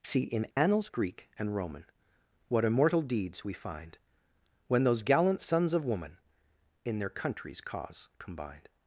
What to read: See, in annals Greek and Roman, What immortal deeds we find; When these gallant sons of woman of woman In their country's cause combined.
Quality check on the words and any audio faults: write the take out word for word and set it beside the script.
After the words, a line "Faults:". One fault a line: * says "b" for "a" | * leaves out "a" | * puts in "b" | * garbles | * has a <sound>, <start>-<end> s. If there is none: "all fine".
See, in annals Greek and Roman, What immortal deeds we find; When those gallant sons of woman In their country's cause combined.
Faults:
* has a dropout, 0.5-0.6 s
* says "those" for "these"
* leaves out "of woman"